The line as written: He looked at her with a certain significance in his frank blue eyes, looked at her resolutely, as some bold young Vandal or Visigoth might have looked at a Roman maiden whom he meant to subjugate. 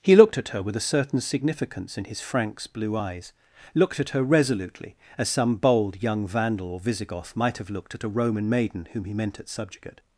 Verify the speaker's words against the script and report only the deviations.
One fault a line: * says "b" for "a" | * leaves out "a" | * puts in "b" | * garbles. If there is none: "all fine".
* says "franks" for "frank"
* says "at" for "to"